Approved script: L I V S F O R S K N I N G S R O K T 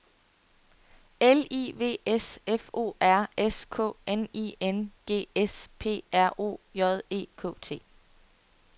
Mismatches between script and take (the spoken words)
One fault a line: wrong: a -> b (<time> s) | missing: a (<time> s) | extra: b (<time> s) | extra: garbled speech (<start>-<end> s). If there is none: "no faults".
extra: P (5.8 s)
extra: J E (6.7 s)